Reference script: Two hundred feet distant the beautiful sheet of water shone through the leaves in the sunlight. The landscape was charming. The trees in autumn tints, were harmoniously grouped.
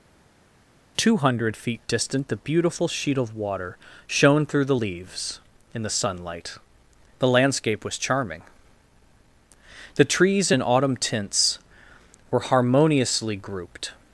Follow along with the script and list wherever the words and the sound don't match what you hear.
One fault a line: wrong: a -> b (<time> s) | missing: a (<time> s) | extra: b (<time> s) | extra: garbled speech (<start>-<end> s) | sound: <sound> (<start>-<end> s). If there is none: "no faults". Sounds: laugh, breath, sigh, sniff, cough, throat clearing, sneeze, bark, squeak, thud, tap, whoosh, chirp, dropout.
no faults